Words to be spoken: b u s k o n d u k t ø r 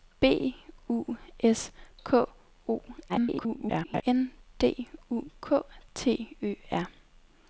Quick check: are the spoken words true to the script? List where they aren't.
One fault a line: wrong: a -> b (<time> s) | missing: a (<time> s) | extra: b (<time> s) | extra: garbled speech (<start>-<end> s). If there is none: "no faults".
extra: garbled speech (3.1-4.0 s)